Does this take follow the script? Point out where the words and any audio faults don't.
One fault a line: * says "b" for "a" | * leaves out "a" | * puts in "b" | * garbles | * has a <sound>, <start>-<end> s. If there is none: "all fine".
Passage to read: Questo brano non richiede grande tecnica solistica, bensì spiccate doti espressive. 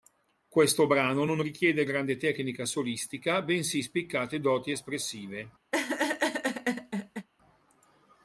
* has a laugh, 5.7-7.3 s